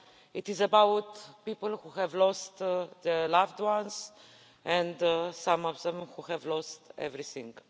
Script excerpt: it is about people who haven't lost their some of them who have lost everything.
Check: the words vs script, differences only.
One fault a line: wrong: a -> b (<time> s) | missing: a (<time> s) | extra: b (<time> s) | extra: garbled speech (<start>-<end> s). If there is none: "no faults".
wrong: haven't -> have (2.0 s)
extra: loved ones and (3.3 s)